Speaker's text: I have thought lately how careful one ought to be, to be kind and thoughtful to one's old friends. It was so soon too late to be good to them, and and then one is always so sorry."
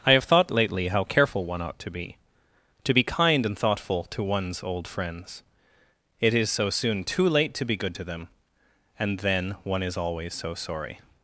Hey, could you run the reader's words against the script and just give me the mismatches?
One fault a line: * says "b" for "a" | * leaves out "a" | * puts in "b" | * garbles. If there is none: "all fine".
* says "is" for "was"
* leaves out "and"